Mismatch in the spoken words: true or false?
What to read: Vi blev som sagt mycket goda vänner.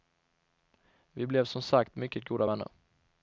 false